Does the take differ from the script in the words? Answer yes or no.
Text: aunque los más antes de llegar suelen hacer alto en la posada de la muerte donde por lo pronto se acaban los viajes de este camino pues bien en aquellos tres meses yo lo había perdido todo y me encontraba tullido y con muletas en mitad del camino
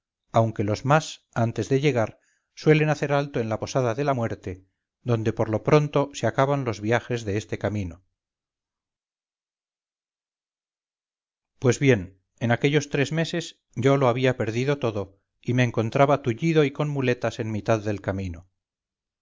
no